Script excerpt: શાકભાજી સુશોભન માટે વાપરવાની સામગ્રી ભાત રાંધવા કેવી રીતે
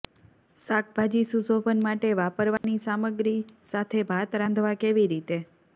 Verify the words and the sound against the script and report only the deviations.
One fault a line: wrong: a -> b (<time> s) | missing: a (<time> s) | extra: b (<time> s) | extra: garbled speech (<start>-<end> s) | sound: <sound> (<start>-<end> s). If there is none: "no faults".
sound: dropout (2.6-2.6 s)
extra: સાથે (3.7 s)